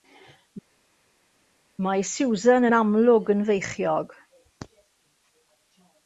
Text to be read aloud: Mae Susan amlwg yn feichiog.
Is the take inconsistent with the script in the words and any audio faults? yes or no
yes